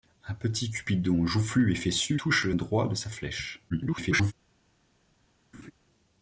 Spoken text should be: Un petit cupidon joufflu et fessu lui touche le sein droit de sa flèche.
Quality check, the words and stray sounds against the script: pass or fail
fail